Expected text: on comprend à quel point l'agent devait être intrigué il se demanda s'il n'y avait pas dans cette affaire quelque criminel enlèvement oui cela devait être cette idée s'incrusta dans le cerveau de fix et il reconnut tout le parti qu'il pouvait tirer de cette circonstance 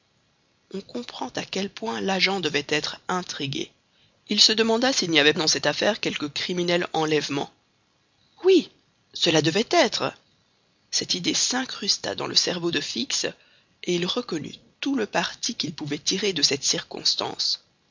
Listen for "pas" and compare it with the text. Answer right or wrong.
wrong